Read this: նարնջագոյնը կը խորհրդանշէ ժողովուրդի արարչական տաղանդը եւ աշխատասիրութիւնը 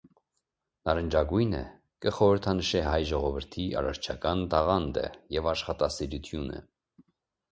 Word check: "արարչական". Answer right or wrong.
right